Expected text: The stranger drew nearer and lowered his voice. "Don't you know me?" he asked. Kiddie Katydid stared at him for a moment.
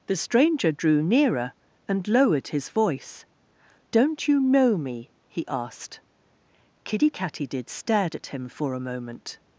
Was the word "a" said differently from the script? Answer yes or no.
no